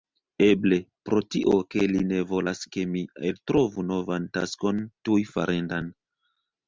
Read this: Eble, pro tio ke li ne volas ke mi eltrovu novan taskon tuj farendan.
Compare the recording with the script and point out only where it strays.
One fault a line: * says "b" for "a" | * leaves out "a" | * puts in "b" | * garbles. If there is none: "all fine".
all fine